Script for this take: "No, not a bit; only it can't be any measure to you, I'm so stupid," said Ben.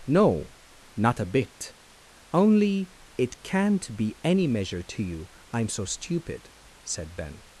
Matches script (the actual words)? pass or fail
pass